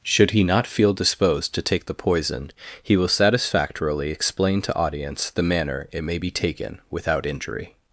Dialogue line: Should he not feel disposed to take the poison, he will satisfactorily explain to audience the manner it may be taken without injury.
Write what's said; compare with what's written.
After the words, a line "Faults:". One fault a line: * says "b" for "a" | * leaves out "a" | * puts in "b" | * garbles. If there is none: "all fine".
Should he not feel disposed to take the poison, he will satisfactorily explain to audience the manner it may be taken without injury.
Faults:
all fine